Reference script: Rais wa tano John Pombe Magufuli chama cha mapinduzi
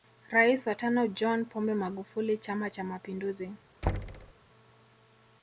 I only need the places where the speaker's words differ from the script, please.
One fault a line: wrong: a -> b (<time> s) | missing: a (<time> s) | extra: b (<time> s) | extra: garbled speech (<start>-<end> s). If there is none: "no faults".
no faults